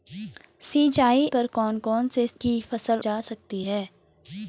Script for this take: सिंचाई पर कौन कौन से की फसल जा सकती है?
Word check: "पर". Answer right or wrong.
right